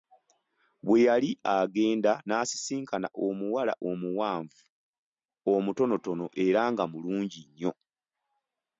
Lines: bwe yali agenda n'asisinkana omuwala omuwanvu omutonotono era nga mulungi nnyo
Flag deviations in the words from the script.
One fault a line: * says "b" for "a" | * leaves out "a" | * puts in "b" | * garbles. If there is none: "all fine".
all fine